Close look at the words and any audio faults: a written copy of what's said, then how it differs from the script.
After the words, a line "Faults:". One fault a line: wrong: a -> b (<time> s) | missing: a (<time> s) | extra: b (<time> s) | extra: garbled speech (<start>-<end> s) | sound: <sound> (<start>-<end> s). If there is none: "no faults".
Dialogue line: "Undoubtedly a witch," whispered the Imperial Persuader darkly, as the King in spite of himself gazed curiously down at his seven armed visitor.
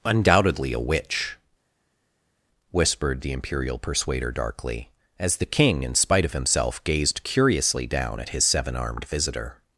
"Undoubtedly a witch," whispered the Imperial Persuader darkly, as the King in spite of himself gazed curiously down at his seven armed visitor.
Faults:
no faults